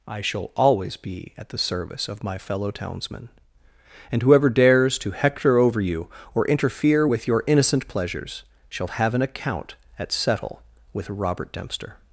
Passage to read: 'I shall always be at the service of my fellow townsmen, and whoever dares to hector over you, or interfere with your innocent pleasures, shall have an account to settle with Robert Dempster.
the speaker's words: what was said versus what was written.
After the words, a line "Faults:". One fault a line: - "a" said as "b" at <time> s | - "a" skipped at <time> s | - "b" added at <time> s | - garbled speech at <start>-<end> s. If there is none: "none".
'I shall always be at the service of my fellow townsmen, and whoever dares to hector over you, or interfere with your innocent pleasures, shall have an account at settle with Robert Dempster.
Faults:
- "to" said as "at" at 10.0 s